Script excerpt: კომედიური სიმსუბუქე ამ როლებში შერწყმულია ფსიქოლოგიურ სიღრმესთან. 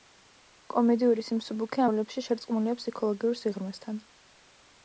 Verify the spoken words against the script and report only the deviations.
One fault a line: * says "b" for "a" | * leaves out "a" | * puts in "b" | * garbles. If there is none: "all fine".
* leaves out "ამ"